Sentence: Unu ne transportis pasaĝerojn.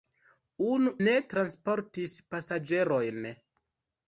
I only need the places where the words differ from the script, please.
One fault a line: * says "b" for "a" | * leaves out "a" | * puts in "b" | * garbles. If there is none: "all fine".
all fine